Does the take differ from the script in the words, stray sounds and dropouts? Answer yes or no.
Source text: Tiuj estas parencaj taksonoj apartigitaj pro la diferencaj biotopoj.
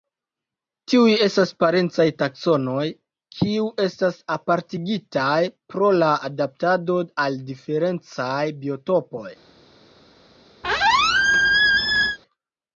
yes